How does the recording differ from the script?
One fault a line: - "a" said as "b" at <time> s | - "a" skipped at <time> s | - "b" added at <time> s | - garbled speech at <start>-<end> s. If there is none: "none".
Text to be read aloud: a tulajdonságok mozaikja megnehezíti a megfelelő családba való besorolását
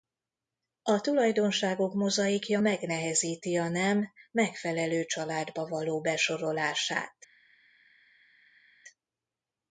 - "nem" added at 3.7 s